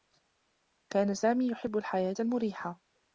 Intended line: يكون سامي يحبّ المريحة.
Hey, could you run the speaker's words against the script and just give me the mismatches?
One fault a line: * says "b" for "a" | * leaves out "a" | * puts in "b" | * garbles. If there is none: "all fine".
* says "كان" for "يكون"
* puts in "الحياة"